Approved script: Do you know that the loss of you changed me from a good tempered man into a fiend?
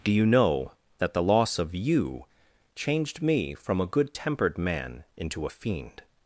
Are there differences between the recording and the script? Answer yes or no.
no